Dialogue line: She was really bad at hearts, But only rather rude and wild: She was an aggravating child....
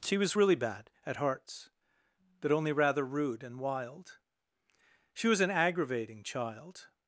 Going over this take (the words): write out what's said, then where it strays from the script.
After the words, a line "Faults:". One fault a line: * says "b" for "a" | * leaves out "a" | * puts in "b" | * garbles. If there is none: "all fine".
She was really bad at hearts, But only rather rude and wild: She was an aggravating child....
Faults:
all fine